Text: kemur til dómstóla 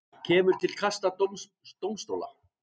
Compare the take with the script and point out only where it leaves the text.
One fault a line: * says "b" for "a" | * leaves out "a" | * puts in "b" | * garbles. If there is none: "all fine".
* puts in "kasta"